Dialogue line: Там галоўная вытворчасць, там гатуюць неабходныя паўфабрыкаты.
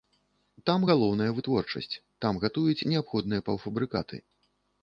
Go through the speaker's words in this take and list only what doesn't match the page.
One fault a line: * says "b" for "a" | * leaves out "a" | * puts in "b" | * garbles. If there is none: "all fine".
all fine